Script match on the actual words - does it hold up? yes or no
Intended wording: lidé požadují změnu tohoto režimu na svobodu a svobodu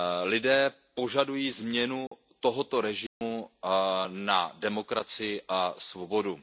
no